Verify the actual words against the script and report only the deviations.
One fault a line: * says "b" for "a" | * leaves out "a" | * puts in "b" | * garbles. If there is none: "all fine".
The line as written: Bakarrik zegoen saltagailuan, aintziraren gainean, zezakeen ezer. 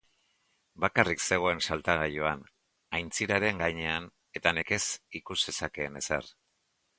* puts in "eta nekez ikus"